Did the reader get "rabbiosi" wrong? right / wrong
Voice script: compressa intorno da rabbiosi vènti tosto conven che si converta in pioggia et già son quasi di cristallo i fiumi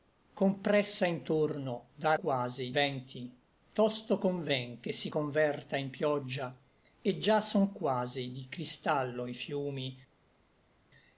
wrong